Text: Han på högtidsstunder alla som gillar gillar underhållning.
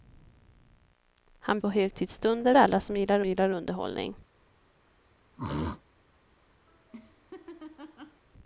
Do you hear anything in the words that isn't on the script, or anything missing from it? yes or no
no